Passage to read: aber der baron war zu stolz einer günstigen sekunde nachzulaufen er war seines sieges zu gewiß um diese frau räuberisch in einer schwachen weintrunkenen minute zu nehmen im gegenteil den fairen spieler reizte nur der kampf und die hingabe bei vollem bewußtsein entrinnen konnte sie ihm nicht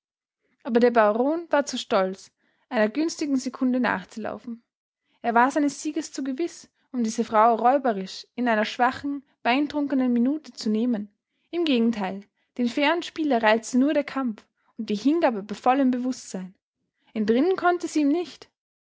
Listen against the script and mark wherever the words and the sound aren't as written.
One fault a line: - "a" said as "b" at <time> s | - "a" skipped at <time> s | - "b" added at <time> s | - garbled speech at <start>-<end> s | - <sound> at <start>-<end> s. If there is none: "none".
none